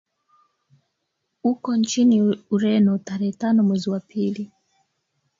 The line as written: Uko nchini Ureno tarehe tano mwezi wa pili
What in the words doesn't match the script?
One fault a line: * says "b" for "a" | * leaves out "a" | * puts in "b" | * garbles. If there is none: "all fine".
all fine